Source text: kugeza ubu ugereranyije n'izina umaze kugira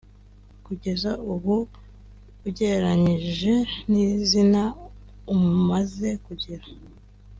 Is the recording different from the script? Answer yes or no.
no